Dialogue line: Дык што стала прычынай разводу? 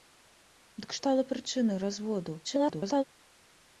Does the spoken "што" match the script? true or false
false